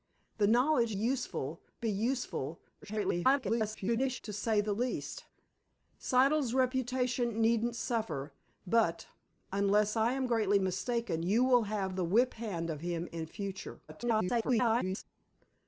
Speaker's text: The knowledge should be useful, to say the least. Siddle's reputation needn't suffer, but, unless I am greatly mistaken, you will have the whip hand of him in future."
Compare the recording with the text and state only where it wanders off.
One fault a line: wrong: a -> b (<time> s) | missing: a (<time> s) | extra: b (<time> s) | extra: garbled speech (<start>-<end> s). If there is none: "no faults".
wrong: should -> useful (0.9 s)
extra: garbled speech (2.8-4.2 s)
extra: garbled speech (13.9-15.0 s)